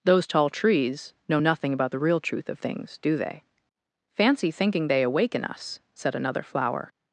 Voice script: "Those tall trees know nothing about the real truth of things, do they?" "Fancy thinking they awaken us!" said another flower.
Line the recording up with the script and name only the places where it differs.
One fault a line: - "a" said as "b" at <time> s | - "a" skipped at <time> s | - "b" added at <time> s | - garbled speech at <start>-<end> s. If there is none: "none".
none